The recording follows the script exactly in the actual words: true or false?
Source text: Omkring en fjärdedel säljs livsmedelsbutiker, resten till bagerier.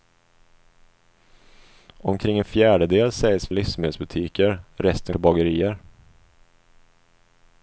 true